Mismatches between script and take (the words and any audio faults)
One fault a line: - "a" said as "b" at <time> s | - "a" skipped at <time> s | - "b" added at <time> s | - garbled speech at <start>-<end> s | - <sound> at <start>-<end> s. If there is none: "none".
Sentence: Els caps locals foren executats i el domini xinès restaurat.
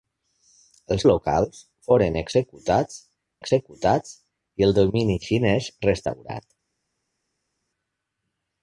- "caps" skipped at 1.1 s
- "executats" added at 3.4 s